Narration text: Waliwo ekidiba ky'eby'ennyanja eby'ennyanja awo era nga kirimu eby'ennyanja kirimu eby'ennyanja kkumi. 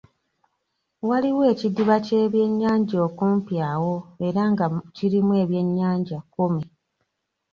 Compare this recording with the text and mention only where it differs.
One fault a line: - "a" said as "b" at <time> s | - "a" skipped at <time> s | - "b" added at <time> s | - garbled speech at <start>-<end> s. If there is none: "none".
- "eby'ennyanja" said as "okumpi" at 3.1 s
- "kirimu eby'ennyanja" skipped at 6.2 s